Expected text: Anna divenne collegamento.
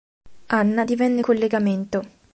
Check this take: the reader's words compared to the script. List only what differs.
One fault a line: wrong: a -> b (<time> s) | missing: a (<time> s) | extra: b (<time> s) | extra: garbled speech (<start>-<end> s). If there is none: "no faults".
no faults